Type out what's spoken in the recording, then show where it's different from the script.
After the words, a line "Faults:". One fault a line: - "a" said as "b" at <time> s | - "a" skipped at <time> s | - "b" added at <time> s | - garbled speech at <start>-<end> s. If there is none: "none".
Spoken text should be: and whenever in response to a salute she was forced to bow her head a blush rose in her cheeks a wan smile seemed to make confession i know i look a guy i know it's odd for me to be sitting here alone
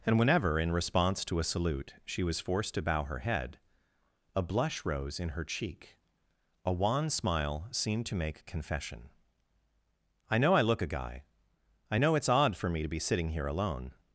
and whenever in response to a salute she was forced to bow her head a blush rose in her cheek a wan smile seemed to make confession i know i look a guy i know it's odd for me to be sitting here alone
Faults:
- "cheeks" said as "cheek" at 5.5 s